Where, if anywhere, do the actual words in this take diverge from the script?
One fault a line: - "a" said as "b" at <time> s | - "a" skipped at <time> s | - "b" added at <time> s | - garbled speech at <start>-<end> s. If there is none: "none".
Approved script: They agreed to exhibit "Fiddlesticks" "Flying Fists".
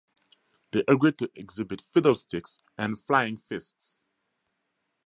- "and" added at 2.8 s